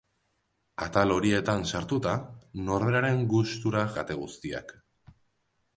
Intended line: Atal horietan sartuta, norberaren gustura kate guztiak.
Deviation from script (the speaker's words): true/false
false